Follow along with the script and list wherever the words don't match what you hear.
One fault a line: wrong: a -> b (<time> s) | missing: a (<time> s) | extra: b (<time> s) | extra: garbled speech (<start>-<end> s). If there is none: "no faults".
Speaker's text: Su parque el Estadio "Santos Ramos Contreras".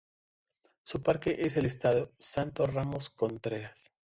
extra: es (1.4 s)